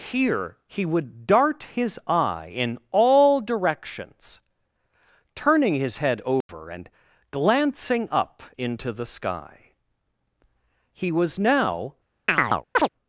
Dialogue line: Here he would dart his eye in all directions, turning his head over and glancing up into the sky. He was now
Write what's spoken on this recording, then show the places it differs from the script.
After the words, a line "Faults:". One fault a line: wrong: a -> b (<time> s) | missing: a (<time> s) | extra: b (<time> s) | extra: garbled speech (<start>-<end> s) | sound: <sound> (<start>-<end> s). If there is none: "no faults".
Here he would dart his eye in all directions, turning his head over and glancing up into the sky. He was now
Faults:
sound: dropout (6.4-6.5 s)
sound: chirp (12.3-12.9 s)